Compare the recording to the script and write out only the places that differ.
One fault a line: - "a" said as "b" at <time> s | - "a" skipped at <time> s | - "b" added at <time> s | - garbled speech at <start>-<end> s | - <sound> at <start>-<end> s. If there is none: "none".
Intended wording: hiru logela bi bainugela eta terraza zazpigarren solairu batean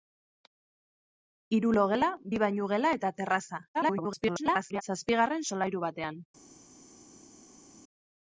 - garbled speech at 3.7-4.8 s